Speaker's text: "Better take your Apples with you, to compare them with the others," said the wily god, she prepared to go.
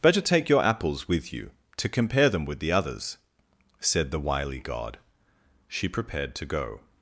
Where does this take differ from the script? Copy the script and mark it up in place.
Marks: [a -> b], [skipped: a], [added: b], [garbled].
"Better take your Apples with you, to compare them with the others," said the wily god, she prepared to go.